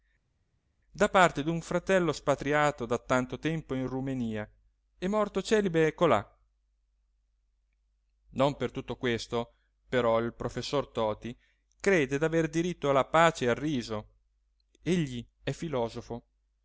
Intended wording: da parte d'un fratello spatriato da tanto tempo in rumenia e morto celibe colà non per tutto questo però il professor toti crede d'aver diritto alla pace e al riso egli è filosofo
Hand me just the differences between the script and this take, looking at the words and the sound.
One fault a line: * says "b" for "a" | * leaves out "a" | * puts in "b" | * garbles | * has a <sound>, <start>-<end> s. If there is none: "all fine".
all fine